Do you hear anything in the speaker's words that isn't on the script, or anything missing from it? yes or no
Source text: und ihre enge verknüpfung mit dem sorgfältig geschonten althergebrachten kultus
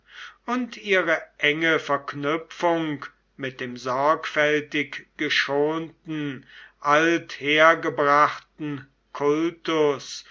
no